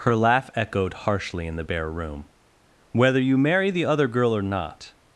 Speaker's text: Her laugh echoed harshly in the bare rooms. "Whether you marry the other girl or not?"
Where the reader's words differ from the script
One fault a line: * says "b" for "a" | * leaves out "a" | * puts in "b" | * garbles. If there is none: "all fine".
* says "room" for "rooms"